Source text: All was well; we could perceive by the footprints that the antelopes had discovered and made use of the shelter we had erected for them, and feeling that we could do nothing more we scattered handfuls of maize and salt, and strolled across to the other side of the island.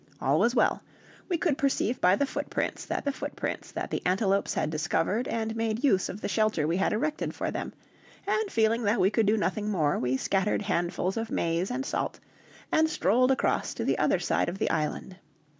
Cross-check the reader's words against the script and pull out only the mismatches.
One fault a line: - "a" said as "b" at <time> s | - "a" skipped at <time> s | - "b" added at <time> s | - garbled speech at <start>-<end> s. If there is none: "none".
- "footprints that the" added at 3.1 s